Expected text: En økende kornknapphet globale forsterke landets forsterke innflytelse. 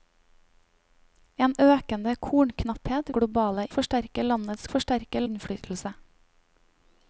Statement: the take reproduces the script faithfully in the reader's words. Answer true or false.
true